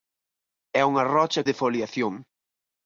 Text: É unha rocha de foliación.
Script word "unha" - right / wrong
right